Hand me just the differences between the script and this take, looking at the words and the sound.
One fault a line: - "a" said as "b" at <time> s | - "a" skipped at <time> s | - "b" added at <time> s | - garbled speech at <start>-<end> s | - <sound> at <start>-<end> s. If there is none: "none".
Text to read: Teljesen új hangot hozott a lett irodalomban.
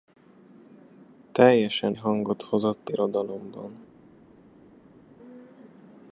- "új" skipped at 1.9 s
- "a lett" skipped at 2.9 s